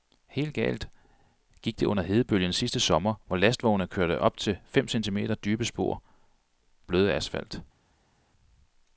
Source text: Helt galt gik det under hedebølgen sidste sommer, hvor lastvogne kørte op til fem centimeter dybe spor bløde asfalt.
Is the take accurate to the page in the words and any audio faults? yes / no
yes